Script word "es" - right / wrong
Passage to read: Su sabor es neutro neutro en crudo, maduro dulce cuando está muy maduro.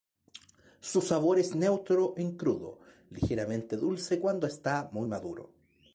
right